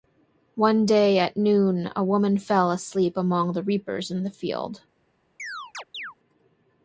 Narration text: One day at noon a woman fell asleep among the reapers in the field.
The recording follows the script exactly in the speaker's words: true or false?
true